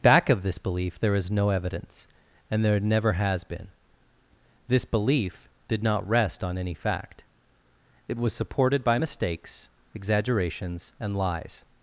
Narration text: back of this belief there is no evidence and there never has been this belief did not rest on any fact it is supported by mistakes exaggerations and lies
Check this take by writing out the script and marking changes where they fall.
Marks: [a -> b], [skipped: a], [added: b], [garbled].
back of this belief there is no evidence and there never has been this belief did not rest on any fact it [is -> was] supported by mistakes exaggerations and lies